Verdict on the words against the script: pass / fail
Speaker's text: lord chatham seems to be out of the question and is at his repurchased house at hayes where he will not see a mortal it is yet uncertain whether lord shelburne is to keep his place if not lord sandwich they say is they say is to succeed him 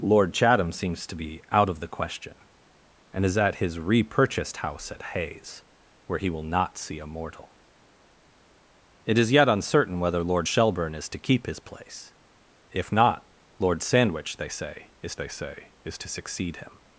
pass